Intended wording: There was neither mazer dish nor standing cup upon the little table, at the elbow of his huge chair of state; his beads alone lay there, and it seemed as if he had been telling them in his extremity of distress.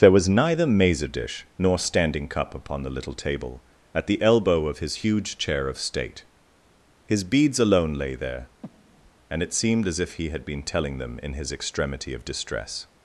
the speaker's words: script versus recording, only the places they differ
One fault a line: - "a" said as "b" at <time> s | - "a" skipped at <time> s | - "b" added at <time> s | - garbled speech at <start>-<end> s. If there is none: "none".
none